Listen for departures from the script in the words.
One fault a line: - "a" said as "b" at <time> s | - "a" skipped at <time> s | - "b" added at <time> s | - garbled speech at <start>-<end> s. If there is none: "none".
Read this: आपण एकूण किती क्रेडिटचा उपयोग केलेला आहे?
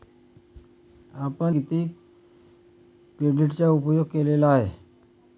- "एकूण" skipped at 1.6 s